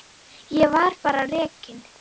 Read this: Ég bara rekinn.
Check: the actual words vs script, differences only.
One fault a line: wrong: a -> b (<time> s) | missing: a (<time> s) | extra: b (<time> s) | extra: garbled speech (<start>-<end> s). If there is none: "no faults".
extra: var (0.7 s)